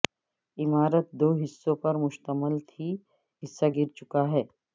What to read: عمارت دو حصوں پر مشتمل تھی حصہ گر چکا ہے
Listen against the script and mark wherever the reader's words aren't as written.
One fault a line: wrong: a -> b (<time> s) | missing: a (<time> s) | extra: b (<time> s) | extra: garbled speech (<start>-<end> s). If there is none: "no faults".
no faults